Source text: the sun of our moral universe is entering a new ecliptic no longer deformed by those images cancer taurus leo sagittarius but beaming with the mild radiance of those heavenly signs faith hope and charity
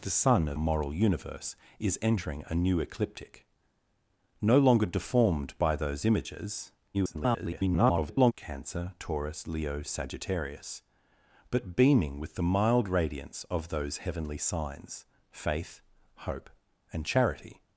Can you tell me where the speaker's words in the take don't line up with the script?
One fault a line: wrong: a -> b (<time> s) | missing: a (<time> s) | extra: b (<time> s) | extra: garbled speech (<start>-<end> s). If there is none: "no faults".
missing: our (0.6 s)
extra: garbled speech (6.9-8.3 s)